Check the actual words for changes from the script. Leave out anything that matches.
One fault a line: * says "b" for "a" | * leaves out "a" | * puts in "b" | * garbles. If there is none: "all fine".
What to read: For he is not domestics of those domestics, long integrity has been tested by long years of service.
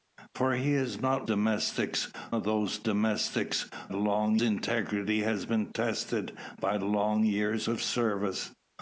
all fine